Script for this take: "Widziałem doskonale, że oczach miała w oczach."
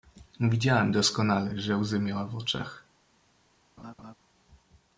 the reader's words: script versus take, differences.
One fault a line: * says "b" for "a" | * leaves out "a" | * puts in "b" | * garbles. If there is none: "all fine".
* says "łzy" for "oczach"